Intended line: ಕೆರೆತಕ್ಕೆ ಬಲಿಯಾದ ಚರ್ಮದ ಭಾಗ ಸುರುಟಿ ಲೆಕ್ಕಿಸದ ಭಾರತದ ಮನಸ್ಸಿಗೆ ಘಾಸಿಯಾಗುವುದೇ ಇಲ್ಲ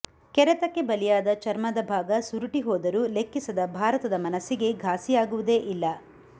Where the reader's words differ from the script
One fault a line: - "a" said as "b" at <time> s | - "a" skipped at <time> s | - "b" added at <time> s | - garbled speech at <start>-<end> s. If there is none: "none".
- "ಹೋದರೂ" added at 2.6 s